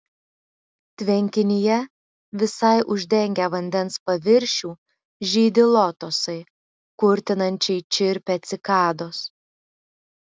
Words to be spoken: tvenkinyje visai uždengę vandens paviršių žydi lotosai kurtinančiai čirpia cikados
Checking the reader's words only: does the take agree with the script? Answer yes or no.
yes